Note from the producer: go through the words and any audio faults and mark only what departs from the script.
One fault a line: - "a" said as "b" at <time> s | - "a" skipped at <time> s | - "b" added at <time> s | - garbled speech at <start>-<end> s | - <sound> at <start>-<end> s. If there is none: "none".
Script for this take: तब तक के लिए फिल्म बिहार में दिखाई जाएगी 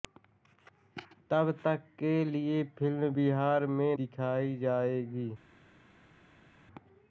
none